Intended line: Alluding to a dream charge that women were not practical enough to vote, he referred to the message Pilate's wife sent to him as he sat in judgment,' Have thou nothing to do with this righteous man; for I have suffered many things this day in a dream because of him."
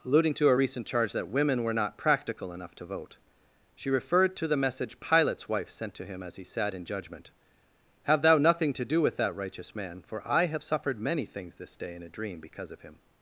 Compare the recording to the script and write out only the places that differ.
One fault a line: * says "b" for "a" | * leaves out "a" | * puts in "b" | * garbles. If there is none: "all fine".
* says "recent" for "dream"
* says "she" for "he"
* says "that" for "this"